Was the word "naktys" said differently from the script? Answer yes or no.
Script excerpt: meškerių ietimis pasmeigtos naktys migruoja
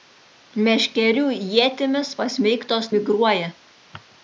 yes